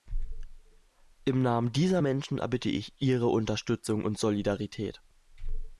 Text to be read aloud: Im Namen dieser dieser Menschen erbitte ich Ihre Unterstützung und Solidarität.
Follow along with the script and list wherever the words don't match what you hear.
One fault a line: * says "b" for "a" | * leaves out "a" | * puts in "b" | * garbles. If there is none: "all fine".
* leaves out "dieser"